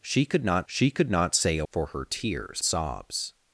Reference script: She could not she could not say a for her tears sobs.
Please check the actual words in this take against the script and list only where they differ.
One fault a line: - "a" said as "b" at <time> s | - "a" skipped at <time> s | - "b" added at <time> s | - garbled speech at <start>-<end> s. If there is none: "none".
none